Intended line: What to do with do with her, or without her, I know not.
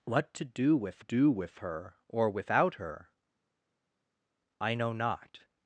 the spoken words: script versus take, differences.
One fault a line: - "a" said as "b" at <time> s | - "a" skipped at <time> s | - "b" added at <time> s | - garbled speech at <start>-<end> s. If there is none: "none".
none